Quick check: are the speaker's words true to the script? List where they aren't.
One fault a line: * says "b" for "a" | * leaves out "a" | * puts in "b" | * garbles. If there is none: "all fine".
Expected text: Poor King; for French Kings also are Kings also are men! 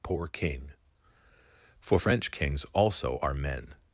* leaves out "Kings also are"